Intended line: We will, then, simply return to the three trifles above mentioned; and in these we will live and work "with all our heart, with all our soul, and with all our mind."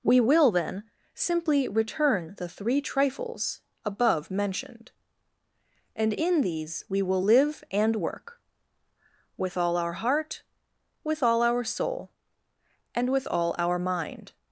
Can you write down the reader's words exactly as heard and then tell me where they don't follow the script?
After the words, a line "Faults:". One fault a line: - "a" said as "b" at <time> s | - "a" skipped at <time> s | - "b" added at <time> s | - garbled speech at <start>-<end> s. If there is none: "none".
We will, then, simply return the three trifles above mentioned; and in these we will live and work "with all our heart, with all our soul, and with all our mind."
Faults:
- "to" skipped at 2.4 s